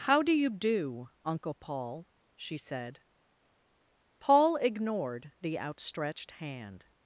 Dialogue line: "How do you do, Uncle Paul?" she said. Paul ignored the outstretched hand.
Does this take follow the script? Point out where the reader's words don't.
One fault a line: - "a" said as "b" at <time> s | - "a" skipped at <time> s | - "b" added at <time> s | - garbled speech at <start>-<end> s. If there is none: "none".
none